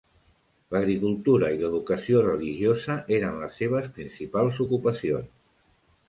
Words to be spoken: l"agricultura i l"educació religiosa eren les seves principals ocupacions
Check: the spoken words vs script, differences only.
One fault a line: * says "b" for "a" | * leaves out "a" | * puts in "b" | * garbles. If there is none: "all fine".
all fine